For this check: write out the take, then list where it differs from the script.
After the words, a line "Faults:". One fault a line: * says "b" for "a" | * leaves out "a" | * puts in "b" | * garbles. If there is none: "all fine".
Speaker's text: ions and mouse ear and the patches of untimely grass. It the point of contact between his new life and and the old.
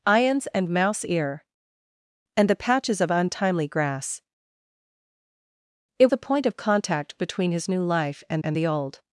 ions and mouse ear and the patches of untimely grass. It the point of contact between his new life and and the old.
Faults:
all fine